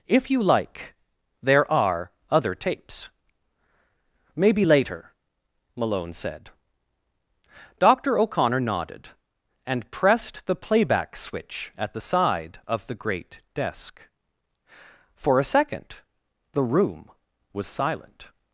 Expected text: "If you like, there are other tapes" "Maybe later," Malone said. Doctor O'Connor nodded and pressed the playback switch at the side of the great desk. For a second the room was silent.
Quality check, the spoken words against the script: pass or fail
pass